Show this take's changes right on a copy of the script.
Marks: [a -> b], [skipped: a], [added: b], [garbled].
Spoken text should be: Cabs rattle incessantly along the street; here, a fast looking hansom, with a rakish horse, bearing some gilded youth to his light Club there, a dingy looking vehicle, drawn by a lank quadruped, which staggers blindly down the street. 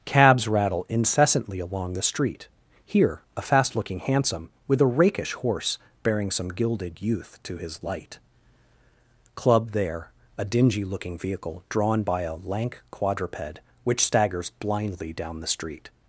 Cabs rattle incessantly along the street; here, a fast looking hansom, with a rakish horse, bearing some gilded youth to his light Club there, a dingy looking vehicle, drawn by a lank quadruped, which staggers blindly down the street.